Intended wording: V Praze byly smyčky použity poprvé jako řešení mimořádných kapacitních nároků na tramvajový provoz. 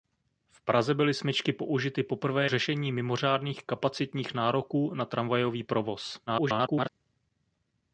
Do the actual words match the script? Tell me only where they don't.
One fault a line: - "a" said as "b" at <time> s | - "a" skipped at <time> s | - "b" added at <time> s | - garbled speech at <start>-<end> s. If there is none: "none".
- "jako" skipped at 2.5 s
- garbled speech at 6.3-6.9 s